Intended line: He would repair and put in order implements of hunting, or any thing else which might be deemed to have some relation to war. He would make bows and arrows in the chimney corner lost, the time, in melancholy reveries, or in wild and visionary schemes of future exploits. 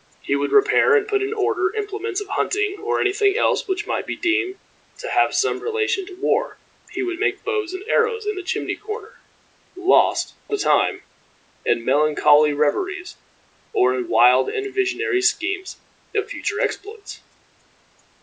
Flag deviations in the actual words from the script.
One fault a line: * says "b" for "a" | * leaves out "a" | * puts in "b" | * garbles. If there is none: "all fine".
all fine